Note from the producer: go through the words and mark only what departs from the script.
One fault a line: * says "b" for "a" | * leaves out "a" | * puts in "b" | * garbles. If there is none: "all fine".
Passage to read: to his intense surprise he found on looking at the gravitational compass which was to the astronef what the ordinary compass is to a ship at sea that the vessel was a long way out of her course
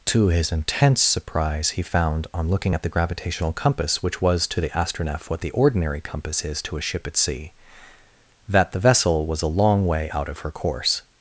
all fine